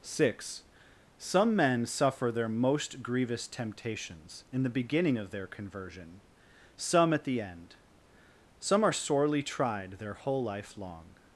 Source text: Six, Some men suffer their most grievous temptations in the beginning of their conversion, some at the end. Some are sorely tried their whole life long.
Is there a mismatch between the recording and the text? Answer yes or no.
no